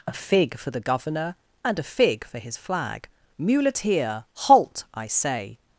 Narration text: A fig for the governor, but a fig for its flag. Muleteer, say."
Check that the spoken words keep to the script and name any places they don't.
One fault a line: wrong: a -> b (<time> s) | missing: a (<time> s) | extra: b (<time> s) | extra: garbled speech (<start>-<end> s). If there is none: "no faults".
wrong: but -> and (1.6 s)
wrong: its -> his (2.4 s)
extra: halt I (4.3 s)